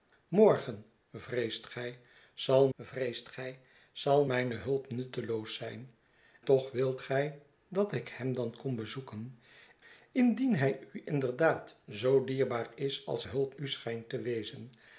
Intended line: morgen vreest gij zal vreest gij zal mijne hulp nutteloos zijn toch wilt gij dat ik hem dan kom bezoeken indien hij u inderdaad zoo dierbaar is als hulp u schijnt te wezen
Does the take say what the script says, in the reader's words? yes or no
yes